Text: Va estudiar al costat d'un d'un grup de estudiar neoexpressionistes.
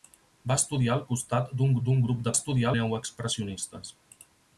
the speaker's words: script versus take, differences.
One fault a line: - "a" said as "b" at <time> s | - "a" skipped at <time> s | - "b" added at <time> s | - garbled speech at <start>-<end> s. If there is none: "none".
none